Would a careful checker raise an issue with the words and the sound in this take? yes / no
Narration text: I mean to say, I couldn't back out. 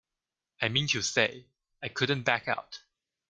no